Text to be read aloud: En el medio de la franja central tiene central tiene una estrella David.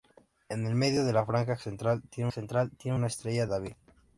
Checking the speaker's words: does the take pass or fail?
pass